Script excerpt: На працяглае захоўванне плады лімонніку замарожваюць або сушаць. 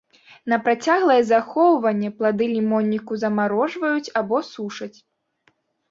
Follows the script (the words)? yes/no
yes